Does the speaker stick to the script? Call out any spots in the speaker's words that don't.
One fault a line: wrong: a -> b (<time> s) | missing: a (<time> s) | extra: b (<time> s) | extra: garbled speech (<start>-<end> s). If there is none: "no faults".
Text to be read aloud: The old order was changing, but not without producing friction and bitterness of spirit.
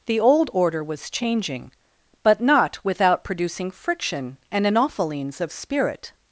wrong: bitterness -> anophelines (4.6 s)